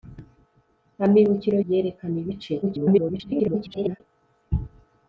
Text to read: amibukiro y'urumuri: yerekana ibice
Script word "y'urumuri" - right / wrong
wrong